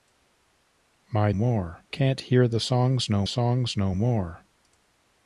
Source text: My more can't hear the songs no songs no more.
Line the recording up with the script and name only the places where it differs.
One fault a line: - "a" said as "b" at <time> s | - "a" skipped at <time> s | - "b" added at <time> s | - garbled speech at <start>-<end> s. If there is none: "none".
none